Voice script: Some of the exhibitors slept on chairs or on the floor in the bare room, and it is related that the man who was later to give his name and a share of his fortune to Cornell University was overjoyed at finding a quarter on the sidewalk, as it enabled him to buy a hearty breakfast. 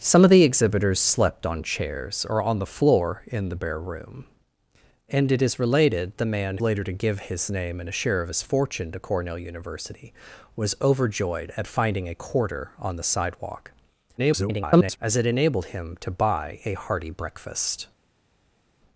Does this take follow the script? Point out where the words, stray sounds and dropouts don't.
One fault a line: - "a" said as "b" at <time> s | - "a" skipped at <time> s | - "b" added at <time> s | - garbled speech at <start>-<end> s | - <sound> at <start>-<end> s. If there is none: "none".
- "that" skipped at 6.1 s
- "who was" skipped at 6.6 s
- garbled speech at 14.2-15.0 s